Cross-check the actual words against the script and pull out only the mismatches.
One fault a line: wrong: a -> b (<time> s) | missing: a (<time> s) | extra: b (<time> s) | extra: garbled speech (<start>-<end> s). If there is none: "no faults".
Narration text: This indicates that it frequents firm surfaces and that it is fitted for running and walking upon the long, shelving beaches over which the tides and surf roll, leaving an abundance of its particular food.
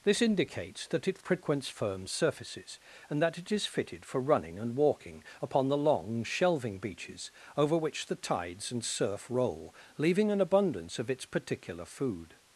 no faults